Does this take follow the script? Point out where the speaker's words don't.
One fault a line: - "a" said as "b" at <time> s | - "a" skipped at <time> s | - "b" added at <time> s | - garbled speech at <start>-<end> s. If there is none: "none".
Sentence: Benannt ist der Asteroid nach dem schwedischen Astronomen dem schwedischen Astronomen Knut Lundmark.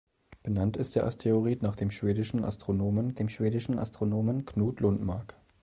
none